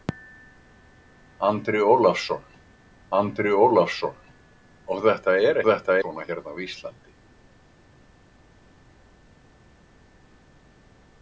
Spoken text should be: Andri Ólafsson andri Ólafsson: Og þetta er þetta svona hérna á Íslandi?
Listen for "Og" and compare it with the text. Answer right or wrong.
right